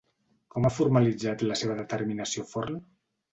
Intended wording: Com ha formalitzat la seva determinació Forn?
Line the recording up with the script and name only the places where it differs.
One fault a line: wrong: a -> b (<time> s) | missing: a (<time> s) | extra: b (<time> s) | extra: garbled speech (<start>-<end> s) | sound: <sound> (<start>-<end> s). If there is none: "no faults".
no faults